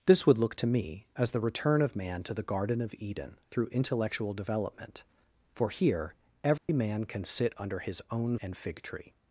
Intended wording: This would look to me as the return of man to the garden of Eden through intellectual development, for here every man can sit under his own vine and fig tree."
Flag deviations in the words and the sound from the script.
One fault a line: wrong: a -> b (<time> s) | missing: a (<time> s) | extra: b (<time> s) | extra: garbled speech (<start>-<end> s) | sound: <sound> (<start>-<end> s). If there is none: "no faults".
sound: dropout (6.6-6.7 s)
missing: vine (8.3 s)